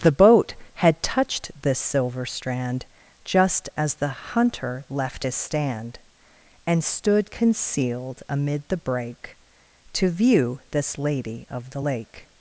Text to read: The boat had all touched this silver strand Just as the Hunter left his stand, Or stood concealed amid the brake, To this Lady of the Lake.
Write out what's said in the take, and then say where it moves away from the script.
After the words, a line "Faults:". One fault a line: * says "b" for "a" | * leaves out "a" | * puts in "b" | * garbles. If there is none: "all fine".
The boat had touched this silver strand Just as the Hunter left his stand, And stood concealed amid the brake, To view this Lady of the Lake.
Faults:
* leaves out "all"
* says "And" for "Or"
* puts in "view"